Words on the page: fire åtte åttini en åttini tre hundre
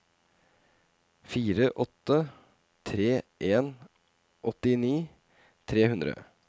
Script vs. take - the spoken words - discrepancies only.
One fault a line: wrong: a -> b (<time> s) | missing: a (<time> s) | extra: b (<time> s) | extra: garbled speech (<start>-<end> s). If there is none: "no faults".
wrong: åttini -> tre (2.9 s)